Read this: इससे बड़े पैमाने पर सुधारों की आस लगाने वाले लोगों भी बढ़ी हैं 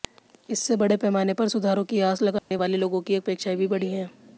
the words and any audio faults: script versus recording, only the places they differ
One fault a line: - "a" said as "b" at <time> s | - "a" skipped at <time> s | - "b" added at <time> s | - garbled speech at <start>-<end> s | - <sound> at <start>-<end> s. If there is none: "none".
- dropout at 2.4-2.5 s
- "की अपेक्षाएं" added at 3.0 s